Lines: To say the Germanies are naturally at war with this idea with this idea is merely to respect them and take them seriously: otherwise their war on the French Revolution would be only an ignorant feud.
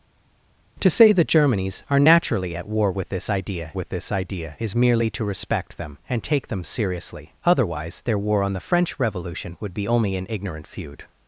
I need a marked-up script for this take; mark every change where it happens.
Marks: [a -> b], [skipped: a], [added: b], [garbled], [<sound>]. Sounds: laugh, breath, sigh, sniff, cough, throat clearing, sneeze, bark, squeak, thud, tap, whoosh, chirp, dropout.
To say the Germanies are naturally at war with this idea with this idea is merely to respect them and take them seriously: otherwise their war on the French Revolution would be only an ignorant feud.